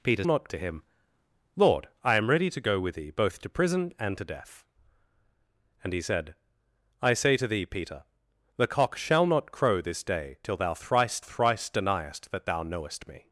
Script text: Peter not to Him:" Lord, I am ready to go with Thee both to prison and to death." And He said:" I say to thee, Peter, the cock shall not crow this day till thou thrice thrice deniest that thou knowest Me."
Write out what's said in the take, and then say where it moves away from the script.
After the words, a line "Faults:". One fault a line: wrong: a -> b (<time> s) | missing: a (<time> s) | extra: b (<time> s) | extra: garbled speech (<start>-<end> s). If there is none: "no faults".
Peter not to Him:" Lord, I am ready to go with Thee both to prison and to death." And He said:" I say to thee, Peter, the cock shall not crow this day till thou thrice thrice deniest that thou knowest Me."
Faults:
no faults